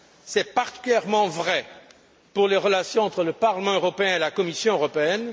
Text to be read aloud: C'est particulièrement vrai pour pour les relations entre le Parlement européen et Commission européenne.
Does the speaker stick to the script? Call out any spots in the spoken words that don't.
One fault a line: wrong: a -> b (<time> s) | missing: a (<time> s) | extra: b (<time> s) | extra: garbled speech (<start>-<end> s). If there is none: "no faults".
missing: pour (2.5 s)
extra: la (4.2 s)